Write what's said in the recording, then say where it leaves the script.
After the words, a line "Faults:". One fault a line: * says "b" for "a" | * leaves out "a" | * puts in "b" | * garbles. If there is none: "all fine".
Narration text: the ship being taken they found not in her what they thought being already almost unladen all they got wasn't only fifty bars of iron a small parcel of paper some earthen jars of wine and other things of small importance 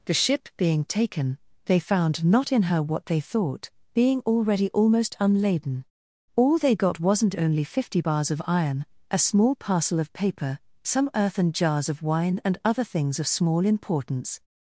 the ship being taken they found not in her what they thought being already almost unladen all they got wasn't only fifty bars of iron a small parcel of paper some earthen jars of wine and other things of small importance
Faults:
all fine